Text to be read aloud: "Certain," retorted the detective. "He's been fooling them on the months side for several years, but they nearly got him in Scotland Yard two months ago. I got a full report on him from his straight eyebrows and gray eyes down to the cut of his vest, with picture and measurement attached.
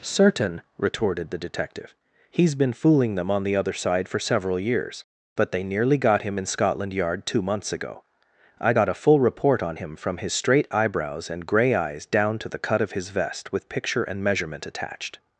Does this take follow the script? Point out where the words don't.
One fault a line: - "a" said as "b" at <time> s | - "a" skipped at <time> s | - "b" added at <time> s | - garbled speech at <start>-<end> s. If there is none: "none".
- "months" said as "other" at 3.5 s